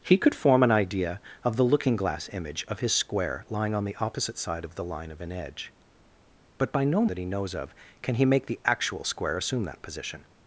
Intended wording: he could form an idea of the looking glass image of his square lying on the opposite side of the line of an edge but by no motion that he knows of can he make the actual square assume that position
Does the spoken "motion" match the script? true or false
false